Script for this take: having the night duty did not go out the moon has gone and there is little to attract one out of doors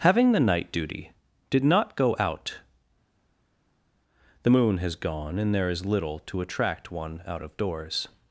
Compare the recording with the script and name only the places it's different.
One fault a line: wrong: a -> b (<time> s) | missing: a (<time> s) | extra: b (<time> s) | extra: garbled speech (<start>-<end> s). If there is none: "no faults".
no faults